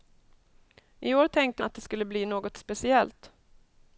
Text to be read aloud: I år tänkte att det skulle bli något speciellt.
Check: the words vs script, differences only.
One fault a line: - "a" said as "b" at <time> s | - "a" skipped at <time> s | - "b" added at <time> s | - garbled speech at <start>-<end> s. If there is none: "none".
none